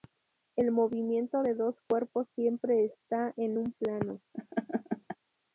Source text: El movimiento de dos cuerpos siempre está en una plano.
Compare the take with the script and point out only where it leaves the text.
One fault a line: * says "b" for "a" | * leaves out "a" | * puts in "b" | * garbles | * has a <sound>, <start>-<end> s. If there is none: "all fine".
* says "un" for "una"
* has a laugh, 4.3-5.2 s